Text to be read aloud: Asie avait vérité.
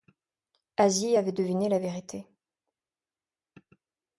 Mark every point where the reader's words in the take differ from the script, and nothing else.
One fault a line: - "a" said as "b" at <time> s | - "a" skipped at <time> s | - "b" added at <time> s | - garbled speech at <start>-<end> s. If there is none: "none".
- "deviné la" added at 1.3 s